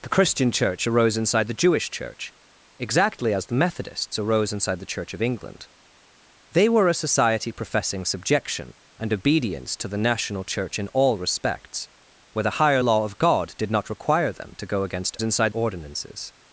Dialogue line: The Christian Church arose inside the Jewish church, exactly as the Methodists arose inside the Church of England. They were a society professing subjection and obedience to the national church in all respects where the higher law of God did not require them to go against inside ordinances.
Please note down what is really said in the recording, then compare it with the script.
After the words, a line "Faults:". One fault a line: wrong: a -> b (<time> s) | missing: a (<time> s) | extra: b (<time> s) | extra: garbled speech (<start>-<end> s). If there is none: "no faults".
The Christian Church arose inside the Jewish church, exactly as the Methodists arose inside the Church of England. They were a society professing subjection and obedience to the national church in all respects where the higher law of God did not require them to go against inside ordinances.
Faults:
no faults